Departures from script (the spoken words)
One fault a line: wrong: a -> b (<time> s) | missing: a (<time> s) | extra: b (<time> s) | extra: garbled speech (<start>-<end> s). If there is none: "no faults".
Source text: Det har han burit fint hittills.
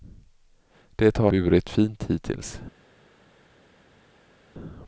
missing: han (1.3 s)